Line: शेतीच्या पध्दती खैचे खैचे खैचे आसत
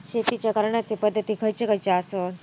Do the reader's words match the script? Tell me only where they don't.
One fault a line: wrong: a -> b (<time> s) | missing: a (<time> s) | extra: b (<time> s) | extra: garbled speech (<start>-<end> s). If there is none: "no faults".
extra: करण्याचे (0.5 s)
missing: खैचे (1.9 s)